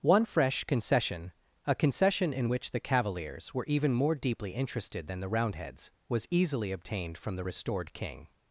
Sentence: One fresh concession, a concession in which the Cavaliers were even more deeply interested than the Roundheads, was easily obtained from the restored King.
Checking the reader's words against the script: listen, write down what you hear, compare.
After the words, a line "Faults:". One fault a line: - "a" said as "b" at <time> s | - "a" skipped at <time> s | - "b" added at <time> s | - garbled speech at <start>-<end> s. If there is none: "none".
One fresh concession, a concession in which the Cavaliers were even more deeply interested than the Roundheads, was easily obtained from the restored King.
Faults:
none